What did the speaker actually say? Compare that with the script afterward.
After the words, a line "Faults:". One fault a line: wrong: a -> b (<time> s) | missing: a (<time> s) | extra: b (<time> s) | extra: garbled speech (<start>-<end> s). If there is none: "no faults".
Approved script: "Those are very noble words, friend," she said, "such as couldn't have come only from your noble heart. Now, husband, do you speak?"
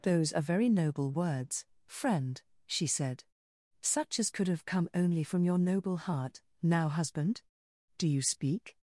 "Those are very noble words, friend," she said, "such as could have come only from your noble heart. Now, husband, do you speak?"
Faults:
wrong: couldn't -> could (4.3 s)